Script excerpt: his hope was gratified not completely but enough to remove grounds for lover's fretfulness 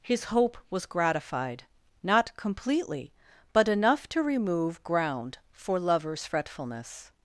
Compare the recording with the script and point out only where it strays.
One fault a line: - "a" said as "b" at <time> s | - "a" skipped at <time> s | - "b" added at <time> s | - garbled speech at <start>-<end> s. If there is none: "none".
- "grounds" said as "ground" at 4.8 s